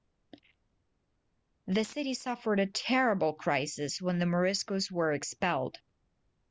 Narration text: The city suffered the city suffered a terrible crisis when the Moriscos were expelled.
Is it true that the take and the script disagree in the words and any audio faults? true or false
true